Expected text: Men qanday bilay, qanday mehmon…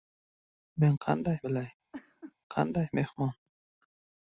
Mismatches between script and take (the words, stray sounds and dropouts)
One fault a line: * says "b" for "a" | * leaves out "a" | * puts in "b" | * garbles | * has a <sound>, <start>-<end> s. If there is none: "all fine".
* has a laugh, 1.9-2.3 s